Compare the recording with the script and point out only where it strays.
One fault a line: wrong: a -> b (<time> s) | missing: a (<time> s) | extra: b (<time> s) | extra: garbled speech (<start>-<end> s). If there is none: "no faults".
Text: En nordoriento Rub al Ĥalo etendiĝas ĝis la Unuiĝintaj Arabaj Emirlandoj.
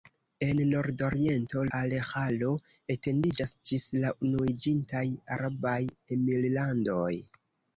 missing: Rub (1.6 s)